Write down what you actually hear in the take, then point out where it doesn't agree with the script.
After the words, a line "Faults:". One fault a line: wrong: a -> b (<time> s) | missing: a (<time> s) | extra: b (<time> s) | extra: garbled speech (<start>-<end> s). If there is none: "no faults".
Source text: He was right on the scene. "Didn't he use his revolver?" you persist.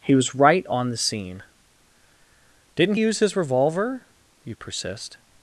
He was right on the scene. "Didn't use his revolver?" you persist.
Faults:
missing: he (3.0 s)